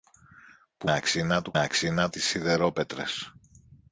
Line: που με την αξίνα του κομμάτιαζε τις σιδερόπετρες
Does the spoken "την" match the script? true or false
false